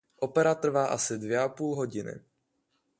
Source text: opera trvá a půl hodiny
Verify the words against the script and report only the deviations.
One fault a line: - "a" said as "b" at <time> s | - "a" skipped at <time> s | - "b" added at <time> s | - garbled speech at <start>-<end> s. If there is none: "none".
- "asi dvě" added at 0.8 s